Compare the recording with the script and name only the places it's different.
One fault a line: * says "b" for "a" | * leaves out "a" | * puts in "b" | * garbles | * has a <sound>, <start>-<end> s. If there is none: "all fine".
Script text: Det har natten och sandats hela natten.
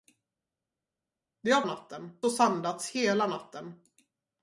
all fine